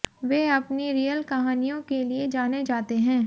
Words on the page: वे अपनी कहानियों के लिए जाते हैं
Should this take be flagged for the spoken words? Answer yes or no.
yes